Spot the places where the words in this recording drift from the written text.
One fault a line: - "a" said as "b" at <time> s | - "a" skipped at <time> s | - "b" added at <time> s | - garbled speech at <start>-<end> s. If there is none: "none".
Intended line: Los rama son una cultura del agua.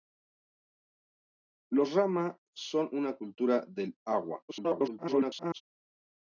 - garbled speech at 4.5-5.6 s